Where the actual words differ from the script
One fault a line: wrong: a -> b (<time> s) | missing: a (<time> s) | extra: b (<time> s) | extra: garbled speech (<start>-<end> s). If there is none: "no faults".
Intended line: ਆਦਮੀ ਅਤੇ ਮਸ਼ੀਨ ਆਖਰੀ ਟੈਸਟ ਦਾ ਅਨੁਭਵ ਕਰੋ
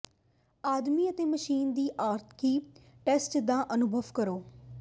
extra: ਦੀ (1.7 s)